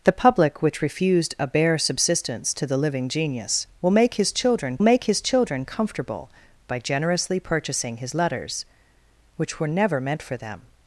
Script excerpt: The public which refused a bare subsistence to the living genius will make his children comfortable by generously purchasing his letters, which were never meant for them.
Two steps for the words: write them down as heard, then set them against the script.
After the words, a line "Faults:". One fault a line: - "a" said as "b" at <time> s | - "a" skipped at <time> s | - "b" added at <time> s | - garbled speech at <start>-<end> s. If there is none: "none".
The public which refused a bare subsistence to the living genius will make his children make his children comfortable by generously purchasing his letters, which were never meant for them.
Faults:
- "make his children" added at 4.8 s